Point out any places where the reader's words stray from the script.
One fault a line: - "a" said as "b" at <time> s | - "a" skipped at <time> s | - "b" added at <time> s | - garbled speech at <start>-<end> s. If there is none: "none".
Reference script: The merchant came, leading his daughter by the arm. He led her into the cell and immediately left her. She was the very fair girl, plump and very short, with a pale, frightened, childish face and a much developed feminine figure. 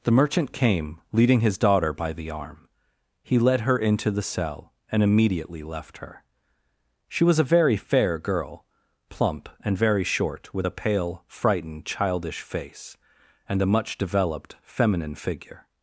- "the" said as "a" at 7.4 s